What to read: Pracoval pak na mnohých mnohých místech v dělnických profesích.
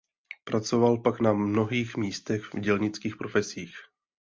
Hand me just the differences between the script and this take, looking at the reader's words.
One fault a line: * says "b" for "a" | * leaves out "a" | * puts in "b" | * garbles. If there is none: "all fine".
* leaves out "mnohých"